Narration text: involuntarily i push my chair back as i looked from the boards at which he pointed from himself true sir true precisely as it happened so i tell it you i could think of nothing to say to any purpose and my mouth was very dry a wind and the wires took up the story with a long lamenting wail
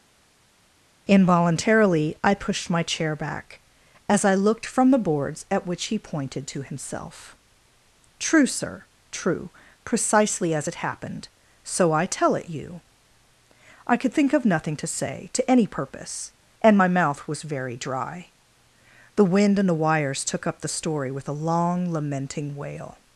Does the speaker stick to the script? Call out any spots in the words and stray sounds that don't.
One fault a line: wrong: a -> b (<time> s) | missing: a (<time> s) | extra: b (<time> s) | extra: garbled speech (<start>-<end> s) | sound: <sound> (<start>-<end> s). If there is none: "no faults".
wrong: push -> pushed (2.3 s)
wrong: from -> to (6.5 s)
wrong: a -> the (19.2 s)